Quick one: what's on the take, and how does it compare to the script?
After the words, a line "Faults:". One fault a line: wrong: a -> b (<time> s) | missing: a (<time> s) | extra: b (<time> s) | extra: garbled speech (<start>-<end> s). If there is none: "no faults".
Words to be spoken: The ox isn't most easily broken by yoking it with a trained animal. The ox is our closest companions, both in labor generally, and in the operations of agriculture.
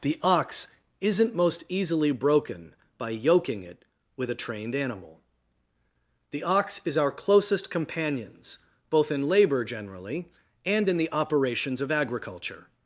The ox isn't most easily broken by yoking it with a trained animal. The ox is our closest companions, both in labor generally, and in the operations of agriculture.
Faults:
no faults